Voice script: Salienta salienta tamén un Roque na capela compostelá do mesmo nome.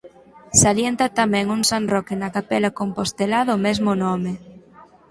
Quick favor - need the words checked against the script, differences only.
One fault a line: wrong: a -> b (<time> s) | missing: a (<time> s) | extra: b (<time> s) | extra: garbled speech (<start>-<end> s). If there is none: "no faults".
missing: salienta (1.1 s)
extra: san (1.7 s)